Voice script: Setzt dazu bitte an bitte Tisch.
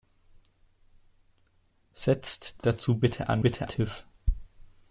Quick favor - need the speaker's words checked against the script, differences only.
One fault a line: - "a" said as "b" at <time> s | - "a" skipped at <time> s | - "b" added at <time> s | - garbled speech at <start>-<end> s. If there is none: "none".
none